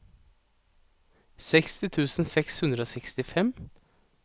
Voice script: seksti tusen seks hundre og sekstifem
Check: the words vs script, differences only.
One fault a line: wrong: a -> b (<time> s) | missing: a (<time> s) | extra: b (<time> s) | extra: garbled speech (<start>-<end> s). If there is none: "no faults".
no faults